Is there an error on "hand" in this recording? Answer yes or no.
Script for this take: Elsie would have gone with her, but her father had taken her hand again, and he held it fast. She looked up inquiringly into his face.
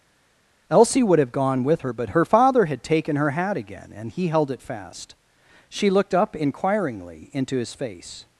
yes